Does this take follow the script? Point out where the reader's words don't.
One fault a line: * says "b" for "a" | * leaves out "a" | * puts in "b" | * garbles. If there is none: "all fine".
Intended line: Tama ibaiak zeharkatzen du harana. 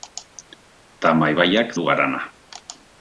* leaves out "zeharkatzen"